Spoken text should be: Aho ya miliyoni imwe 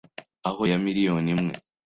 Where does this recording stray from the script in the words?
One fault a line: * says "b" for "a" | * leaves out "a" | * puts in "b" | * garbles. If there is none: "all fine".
all fine